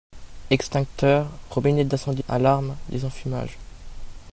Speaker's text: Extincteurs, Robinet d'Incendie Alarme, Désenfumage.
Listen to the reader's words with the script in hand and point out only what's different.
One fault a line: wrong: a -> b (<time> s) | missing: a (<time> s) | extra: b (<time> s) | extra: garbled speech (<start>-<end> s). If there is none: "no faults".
no faults